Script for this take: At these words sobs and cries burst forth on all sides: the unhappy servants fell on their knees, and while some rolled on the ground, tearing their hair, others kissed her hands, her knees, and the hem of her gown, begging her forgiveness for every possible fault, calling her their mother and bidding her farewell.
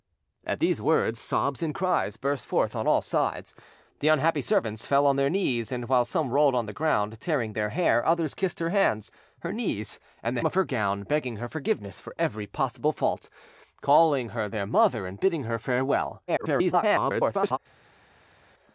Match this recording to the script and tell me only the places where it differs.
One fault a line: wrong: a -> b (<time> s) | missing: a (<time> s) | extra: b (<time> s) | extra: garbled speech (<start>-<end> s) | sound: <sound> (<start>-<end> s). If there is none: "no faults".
missing: hem (10.4 s)
extra: garbled speech (16.3-17.6 s)